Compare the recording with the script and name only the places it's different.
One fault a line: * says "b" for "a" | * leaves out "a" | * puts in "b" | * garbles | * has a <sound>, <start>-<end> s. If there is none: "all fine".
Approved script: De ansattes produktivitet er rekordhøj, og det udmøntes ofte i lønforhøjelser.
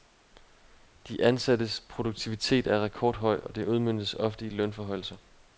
all fine